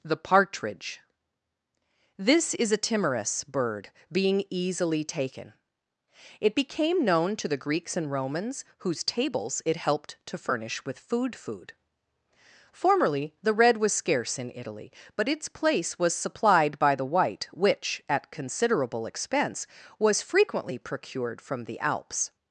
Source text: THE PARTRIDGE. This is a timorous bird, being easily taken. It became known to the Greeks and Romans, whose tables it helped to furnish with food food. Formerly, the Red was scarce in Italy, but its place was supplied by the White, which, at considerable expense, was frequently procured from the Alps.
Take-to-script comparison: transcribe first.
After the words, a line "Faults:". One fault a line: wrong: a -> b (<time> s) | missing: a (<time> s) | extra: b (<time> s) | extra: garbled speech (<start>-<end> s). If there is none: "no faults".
THE PARTRIDGE. This is a timorous bird, being easily taken. It became known to the Greeks and Romans, whose tables it helped to furnish with food food. Formerly, the Red was scarce in Italy, but its place was supplied by the White, which, at considerable expense, was frequently procured from the Alps.
Faults:
no faults